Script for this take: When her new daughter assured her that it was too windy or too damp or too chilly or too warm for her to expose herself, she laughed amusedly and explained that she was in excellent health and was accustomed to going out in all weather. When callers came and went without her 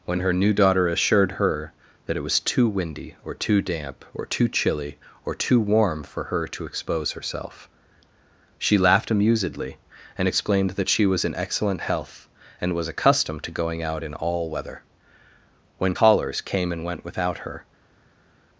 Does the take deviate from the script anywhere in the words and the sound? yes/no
no